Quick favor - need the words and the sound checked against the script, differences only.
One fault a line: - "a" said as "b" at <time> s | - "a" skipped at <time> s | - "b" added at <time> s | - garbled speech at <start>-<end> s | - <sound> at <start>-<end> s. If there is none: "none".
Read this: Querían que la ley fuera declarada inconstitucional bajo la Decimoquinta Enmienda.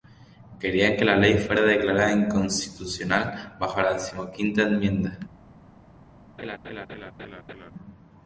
- laugh at 6.4-7.7 s